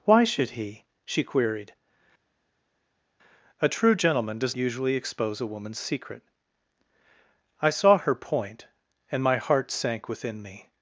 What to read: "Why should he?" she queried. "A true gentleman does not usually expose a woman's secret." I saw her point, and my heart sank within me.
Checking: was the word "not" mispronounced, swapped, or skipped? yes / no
yes